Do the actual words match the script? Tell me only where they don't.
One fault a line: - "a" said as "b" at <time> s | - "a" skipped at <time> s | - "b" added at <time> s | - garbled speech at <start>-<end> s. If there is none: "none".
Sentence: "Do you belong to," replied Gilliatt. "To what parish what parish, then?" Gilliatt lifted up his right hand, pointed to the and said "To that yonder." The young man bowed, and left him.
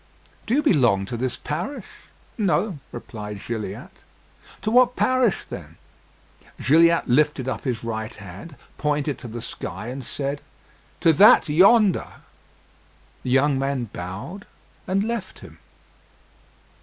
- "this parish No" added at 1.1 s
- "what parish" skipped at 5.5 s
- "sky" added at 9.4 s